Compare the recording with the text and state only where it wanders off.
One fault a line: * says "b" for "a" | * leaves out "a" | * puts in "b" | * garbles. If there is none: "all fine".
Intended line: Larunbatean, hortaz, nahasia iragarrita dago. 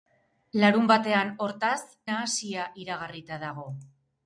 all fine